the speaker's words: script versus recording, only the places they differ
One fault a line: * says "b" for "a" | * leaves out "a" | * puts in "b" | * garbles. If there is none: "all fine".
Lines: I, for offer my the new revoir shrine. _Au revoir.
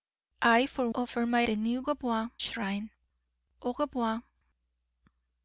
all fine